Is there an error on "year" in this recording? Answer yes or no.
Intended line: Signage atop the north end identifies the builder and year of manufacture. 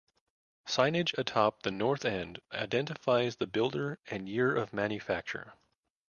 no